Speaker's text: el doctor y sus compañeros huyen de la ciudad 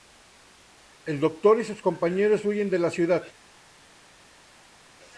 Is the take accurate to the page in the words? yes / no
yes